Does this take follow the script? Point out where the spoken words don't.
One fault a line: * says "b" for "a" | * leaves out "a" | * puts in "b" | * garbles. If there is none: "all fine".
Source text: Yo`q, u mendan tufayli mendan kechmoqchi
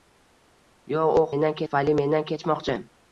all fine